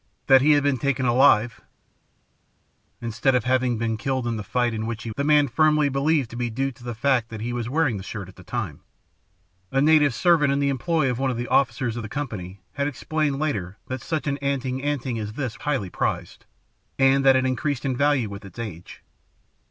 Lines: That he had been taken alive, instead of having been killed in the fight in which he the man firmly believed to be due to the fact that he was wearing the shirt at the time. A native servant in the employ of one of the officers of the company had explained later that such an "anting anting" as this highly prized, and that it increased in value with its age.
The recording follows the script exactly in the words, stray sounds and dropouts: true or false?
true